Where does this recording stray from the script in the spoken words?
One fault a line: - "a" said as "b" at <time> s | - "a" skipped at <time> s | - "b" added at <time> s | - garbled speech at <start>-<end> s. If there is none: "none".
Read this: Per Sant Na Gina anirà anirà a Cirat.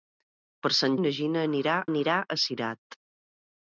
none